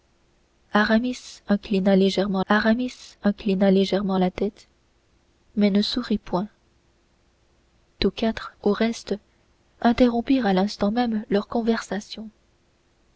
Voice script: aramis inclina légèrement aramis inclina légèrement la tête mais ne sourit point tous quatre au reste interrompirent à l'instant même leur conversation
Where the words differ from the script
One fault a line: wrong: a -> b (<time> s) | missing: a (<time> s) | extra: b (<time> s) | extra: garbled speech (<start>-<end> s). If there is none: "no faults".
no faults